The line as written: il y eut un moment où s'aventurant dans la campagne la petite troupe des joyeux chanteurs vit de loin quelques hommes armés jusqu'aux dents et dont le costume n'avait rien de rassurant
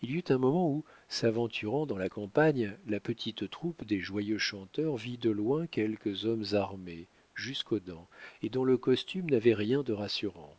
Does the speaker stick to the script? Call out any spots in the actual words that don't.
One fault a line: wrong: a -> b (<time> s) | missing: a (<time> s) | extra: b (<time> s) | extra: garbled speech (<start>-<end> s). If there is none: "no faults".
no faults